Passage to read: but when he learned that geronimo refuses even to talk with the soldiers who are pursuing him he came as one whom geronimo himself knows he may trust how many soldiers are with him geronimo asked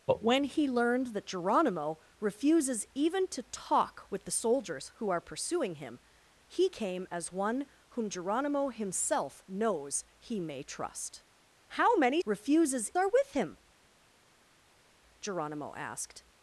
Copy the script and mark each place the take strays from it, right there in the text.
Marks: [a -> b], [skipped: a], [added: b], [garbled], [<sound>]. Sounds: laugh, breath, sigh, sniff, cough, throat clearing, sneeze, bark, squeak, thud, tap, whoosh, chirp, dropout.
but when he learned that geronimo refuses even to talk with the soldiers who are pursuing him he came as one whom geronimo himself knows he may trust how many [soldiers -> refuses] are with him geronimo asked